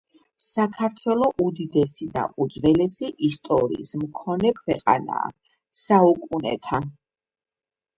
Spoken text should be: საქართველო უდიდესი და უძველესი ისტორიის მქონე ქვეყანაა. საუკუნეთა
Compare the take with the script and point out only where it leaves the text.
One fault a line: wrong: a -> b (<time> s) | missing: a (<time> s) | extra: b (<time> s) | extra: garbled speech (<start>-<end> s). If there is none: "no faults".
no faults